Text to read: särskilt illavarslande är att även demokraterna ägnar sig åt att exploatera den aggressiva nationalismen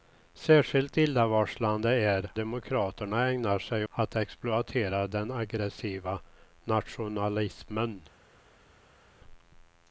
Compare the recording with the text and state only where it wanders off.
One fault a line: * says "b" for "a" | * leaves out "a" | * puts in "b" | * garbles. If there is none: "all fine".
* leaves out "att även"
* leaves out "åt"